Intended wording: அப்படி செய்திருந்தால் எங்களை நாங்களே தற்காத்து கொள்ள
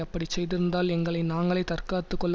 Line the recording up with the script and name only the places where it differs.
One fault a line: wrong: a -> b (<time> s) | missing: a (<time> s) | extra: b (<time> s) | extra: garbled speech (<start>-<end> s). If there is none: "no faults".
no faults